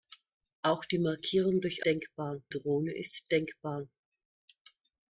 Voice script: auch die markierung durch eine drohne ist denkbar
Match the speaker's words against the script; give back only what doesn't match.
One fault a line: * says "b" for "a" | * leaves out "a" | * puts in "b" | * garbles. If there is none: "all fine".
* says "denkbar" for "eine"